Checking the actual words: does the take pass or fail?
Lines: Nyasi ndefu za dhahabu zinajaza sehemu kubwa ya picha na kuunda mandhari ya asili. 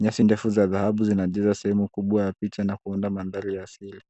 pass